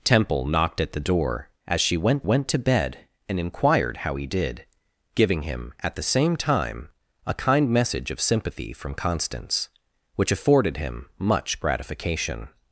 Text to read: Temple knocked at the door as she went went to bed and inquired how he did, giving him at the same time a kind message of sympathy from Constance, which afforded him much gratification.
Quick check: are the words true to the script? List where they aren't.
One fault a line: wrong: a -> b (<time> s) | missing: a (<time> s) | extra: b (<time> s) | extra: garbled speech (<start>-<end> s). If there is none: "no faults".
no faults